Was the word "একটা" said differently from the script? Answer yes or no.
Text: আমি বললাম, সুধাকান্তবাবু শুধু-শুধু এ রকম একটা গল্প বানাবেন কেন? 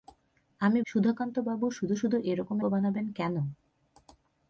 yes